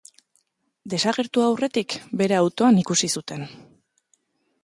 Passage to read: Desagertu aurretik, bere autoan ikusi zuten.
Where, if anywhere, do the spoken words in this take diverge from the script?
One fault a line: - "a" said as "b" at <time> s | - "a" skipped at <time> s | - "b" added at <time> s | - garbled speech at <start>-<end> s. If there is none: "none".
none